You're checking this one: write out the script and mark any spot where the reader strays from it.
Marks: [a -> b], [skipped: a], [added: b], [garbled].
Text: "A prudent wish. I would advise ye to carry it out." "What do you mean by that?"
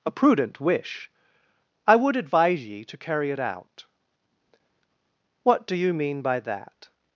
"A prudent wish. I would advise ye to carry it out." "What do you mean by that?"